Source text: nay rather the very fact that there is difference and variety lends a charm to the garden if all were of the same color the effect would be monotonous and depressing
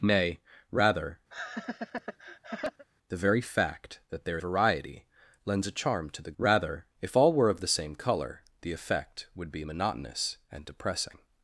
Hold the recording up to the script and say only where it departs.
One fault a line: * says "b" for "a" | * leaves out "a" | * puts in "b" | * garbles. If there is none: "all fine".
* leaves out "is difference and"
* says "rather" for "garden"